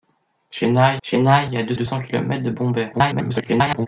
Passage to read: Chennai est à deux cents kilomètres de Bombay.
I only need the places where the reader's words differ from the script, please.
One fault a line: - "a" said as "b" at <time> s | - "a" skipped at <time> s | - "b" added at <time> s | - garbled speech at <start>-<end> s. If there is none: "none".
- "chennai" added at 1.0 s
- "deux" added at 1.7 s
- garbled speech at 2.9-3.9 s